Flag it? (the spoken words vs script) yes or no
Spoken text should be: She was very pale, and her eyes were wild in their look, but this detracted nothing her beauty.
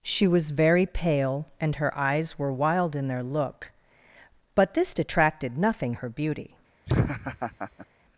no